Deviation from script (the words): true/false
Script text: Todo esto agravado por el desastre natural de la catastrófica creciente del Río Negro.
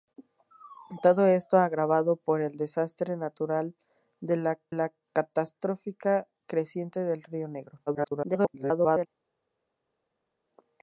true